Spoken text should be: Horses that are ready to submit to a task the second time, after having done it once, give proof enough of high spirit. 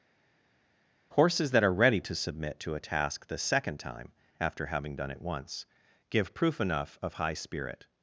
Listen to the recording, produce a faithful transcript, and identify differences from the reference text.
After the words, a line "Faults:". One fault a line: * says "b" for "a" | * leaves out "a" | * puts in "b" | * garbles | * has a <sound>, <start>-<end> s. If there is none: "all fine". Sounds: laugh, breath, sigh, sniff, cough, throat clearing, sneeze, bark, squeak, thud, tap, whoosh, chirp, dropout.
Horses that are ready to submit to a task the second time, after having done it once, give proof enough of high spirit.
Faults:
all fine